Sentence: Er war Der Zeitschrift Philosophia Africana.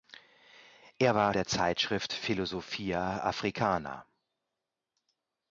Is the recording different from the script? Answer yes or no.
no